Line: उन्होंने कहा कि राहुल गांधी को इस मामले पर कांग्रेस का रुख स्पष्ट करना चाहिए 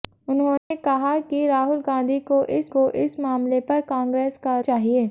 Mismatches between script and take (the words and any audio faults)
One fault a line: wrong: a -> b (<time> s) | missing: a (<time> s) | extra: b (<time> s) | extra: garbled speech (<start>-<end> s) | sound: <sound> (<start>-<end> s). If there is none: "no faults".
sound: dropout (0.6-0.7 s)
extra: को इस (2.7 s)
missing: रुख स्पष्ट करना (4.6 s)